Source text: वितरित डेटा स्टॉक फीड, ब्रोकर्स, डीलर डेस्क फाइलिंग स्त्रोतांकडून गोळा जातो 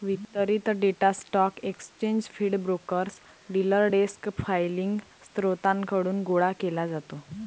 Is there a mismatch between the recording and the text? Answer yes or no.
yes